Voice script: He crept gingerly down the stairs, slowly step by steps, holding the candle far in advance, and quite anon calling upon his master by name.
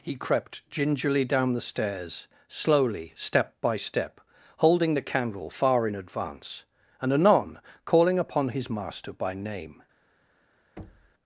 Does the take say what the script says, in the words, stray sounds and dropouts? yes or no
no